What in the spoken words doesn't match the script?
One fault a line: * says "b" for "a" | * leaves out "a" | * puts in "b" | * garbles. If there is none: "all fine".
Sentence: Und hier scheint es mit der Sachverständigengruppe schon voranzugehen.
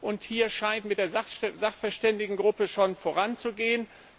* leaves out "es"